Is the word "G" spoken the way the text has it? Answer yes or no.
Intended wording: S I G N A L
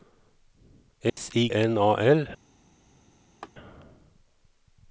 no